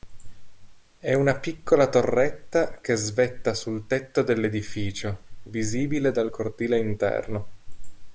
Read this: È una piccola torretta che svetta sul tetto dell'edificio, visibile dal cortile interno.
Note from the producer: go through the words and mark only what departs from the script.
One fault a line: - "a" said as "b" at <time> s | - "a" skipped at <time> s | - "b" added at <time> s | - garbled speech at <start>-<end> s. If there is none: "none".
none